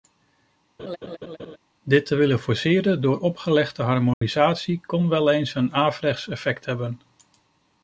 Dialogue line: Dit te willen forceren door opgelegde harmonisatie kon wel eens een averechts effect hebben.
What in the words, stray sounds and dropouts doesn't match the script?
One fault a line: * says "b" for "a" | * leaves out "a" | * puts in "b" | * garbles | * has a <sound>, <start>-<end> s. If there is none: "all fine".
* has a laugh, 0.8-1.6 s
* has a dropout, 4.1-4.2 s